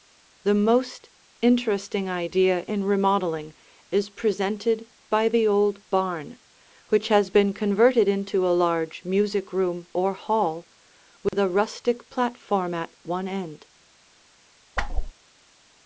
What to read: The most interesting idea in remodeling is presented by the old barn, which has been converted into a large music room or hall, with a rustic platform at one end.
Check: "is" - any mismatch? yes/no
no